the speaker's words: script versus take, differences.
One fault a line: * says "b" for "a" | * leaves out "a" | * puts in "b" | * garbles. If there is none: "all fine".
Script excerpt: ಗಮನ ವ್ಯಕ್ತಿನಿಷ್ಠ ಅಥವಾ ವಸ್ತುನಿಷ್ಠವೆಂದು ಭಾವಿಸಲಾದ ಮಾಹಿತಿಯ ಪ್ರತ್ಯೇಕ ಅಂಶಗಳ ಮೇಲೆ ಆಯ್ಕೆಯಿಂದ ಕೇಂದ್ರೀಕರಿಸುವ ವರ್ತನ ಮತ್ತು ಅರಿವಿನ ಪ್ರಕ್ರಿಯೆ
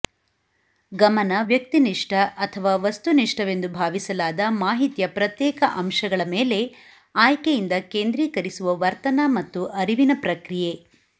all fine